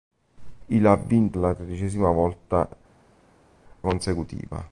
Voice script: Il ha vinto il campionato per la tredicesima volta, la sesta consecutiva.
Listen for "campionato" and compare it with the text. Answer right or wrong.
wrong